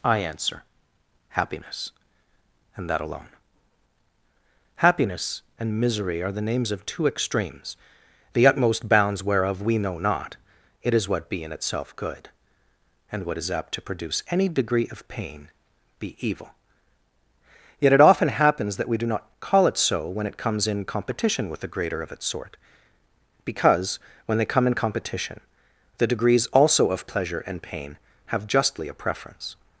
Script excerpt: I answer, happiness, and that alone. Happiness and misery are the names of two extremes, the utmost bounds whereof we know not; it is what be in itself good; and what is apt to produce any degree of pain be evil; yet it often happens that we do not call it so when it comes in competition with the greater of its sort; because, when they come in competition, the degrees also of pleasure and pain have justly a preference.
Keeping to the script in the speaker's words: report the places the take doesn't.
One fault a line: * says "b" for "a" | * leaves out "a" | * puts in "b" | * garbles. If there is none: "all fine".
all fine